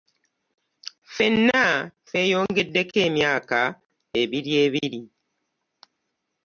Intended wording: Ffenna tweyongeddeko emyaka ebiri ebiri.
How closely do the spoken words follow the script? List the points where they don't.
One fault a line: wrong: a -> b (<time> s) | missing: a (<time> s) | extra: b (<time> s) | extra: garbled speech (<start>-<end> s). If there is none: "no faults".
no faults